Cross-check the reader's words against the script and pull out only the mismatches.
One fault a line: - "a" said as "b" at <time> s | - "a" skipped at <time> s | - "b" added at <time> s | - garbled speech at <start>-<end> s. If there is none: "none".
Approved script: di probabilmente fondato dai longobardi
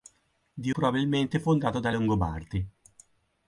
none